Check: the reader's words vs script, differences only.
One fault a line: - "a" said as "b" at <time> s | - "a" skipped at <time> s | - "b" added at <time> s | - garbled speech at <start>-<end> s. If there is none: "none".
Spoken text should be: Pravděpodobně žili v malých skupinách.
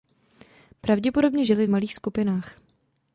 none